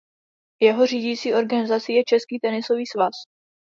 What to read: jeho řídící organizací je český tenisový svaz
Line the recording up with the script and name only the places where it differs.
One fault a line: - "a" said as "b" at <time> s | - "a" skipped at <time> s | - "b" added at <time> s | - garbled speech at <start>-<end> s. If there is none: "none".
none